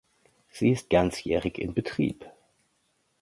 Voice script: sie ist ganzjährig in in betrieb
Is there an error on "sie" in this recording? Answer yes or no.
no